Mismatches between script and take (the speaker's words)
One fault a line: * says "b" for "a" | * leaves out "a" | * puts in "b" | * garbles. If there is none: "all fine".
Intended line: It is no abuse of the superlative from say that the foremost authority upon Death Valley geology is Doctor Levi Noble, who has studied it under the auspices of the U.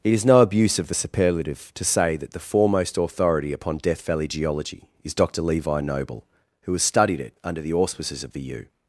* says "to" for "from"